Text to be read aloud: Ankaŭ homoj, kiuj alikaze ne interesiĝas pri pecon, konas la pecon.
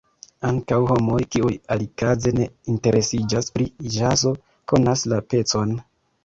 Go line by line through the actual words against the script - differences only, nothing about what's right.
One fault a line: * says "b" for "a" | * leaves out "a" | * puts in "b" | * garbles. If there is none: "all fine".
* says "ĵazo" for "pecon"